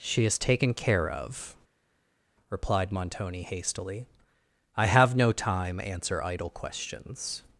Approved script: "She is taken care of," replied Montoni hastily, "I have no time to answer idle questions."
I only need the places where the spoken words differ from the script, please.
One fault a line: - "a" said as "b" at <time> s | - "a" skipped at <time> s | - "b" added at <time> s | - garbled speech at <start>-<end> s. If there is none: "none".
- "to" skipped at 5.8 s